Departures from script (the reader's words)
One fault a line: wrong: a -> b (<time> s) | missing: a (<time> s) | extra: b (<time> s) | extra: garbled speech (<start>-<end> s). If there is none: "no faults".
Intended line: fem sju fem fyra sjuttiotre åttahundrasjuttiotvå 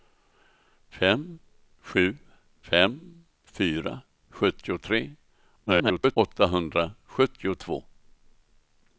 extra: garbled speech (5.7-6.2 s)